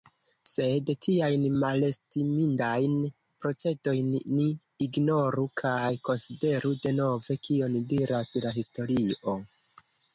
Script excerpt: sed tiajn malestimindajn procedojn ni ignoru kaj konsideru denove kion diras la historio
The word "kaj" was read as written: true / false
true